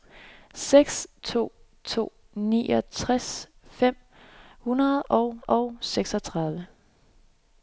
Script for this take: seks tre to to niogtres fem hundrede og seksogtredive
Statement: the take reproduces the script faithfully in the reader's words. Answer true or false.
false